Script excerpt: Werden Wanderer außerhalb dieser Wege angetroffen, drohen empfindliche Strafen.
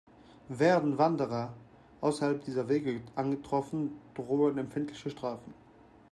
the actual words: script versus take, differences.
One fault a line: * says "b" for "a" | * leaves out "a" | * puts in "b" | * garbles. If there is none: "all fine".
all fine